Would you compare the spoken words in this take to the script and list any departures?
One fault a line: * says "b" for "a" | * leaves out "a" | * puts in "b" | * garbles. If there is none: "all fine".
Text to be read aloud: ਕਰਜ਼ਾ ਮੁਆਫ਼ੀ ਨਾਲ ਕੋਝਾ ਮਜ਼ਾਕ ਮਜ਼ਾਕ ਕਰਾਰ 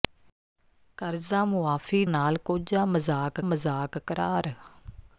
all fine